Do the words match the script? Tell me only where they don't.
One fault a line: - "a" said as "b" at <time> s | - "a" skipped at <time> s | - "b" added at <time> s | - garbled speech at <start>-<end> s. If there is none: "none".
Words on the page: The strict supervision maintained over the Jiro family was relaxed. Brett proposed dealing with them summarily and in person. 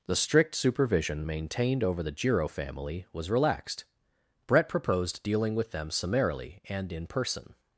none